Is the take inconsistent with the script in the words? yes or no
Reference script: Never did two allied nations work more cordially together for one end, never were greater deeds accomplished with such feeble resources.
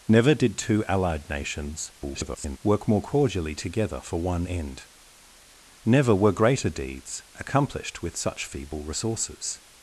yes